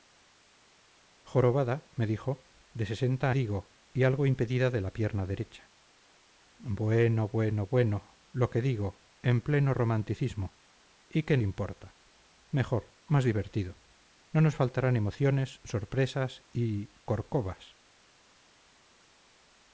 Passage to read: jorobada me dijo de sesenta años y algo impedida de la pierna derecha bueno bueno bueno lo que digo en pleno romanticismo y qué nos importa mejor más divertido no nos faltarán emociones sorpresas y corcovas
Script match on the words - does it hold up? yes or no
no